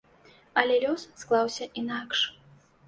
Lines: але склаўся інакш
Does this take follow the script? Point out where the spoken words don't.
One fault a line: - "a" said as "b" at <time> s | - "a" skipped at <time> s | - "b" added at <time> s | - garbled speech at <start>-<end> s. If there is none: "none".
- "лёс" added at 0.8 s